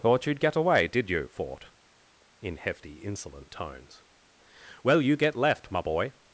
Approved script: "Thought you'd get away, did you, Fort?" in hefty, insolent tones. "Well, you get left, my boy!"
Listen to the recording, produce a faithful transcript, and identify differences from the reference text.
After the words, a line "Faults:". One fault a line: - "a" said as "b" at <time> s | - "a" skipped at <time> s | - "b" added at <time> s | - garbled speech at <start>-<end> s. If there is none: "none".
"Thought you'd get away, did you, Fort?" in hefty, insolent tones. "Well, you get left, my boy!"
Faults:
none